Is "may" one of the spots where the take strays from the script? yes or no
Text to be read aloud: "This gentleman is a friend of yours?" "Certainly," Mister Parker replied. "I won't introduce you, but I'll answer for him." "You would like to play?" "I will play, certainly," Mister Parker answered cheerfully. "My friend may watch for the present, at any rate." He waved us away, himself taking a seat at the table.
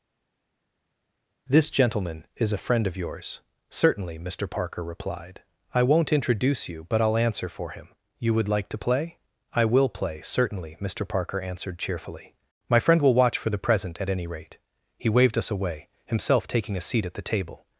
yes